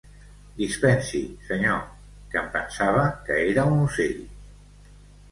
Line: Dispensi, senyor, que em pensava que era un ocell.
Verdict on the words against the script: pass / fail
pass